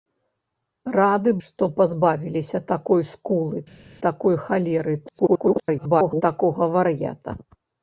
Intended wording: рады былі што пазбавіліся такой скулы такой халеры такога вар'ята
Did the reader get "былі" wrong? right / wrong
wrong